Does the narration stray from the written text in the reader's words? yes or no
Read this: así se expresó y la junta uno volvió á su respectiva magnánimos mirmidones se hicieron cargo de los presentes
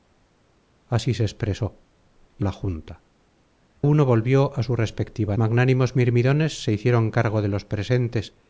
no